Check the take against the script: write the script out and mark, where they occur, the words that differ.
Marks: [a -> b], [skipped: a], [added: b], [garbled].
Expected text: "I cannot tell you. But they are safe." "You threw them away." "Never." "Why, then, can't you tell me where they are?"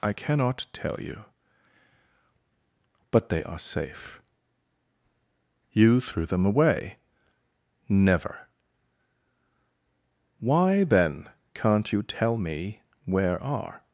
"I cannot tell you. But they are safe." "You threw them away." "Never." "Why, then, can't you tell me where [skipped: they] are?"